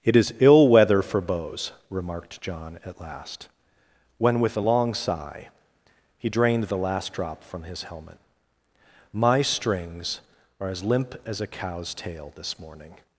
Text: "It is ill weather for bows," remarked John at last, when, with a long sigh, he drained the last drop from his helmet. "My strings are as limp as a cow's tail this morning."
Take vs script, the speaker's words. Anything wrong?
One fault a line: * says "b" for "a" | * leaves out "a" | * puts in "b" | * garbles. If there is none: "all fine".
all fine